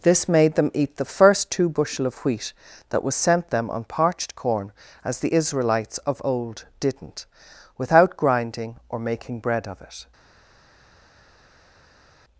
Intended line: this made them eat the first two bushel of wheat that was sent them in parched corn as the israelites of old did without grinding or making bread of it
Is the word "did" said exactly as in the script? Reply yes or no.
no